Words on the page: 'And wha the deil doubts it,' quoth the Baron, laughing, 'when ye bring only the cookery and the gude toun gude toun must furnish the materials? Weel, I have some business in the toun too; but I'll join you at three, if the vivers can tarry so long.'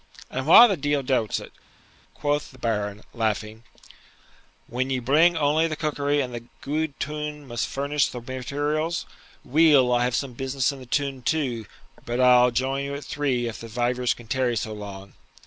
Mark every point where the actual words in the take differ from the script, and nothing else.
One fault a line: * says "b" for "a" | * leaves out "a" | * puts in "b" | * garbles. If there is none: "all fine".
* leaves out "gude toun"